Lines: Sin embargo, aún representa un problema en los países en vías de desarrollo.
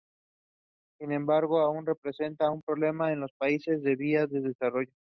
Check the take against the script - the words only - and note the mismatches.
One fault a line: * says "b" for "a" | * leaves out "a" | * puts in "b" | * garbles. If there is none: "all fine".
all fine